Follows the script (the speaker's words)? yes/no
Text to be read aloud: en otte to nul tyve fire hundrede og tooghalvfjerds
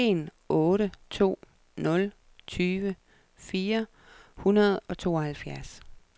yes